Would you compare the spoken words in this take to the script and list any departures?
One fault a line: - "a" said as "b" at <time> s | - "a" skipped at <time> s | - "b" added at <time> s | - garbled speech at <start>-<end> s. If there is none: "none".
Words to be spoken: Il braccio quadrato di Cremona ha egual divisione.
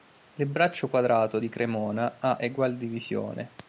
none